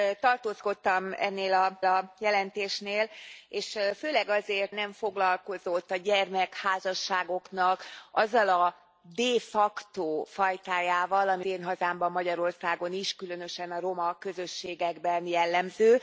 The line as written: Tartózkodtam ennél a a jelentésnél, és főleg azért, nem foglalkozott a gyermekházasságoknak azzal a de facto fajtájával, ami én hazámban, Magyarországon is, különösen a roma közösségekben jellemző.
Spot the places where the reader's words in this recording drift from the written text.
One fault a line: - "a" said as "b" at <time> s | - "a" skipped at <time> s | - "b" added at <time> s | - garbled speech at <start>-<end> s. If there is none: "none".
none